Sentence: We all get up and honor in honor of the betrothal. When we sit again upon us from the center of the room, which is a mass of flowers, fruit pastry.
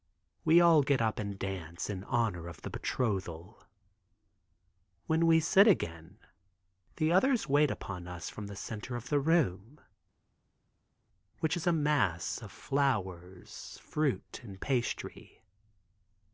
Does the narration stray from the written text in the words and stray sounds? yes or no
yes